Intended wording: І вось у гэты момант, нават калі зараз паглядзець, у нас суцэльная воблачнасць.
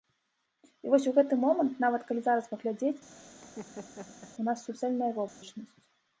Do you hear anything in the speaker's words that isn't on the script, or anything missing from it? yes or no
no